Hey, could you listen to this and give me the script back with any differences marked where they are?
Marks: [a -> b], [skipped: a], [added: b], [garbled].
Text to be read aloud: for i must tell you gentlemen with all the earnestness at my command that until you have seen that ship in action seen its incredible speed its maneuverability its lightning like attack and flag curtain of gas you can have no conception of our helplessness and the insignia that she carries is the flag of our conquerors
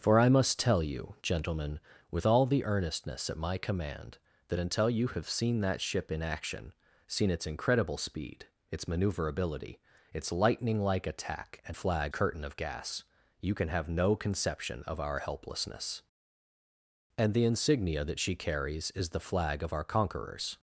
for i must tell you gentlemen with all the earnestness at my command that until you have seen that ship in action seen its incredible speed its maneuverability its lightning like attack and flag curtain of gas you can have no conception of our helplessness and the insignia that she carries is the flag of our conquerors